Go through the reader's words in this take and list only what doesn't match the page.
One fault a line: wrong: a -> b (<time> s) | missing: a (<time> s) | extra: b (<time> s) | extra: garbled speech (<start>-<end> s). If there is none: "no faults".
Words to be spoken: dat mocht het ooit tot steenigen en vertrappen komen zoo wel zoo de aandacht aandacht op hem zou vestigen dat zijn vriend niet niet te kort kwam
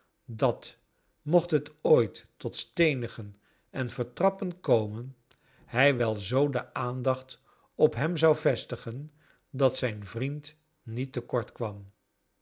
wrong: zoo -> hij (5.7 s)
missing: aandacht (7.4 s)
missing: niet (11.1 s)